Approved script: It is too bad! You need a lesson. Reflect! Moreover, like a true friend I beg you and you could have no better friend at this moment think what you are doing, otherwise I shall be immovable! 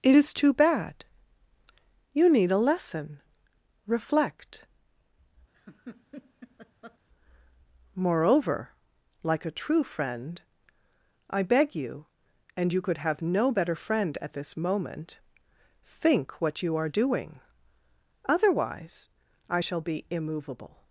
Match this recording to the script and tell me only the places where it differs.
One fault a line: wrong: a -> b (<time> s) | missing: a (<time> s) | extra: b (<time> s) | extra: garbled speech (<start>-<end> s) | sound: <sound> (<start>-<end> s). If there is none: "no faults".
sound: laugh (5.5-7.0 s)